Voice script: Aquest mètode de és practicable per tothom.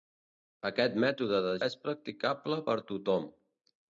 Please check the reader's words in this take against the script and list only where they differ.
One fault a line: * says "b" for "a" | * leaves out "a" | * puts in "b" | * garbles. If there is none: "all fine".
all fine